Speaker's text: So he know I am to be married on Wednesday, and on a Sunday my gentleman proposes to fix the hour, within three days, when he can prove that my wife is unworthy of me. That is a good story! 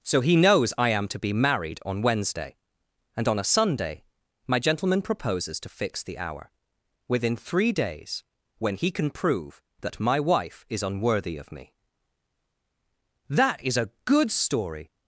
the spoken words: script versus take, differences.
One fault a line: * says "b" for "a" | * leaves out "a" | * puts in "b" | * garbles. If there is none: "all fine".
* says "knows" for "know"